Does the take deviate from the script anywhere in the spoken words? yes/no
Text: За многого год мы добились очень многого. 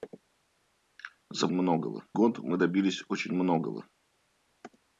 no